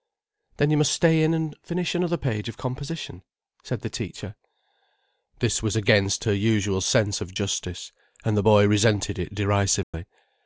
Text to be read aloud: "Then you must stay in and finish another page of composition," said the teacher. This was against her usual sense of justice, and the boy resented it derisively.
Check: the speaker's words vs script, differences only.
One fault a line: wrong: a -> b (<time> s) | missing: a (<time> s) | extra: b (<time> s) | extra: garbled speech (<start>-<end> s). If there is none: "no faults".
no faults